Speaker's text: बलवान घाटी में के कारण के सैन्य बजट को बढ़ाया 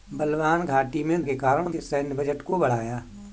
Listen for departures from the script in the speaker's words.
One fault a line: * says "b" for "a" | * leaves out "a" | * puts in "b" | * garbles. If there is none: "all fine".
all fine